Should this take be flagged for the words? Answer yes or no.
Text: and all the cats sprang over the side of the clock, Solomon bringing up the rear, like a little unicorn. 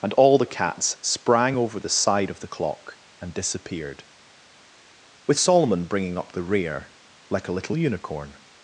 yes